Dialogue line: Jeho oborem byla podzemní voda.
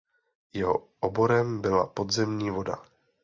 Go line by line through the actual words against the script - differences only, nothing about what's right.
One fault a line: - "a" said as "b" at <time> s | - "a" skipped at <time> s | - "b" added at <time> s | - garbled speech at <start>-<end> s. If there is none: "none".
none